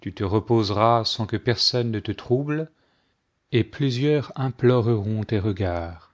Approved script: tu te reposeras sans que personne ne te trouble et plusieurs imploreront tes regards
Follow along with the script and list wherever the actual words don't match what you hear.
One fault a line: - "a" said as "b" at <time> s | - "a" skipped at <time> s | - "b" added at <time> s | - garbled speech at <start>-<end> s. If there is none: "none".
none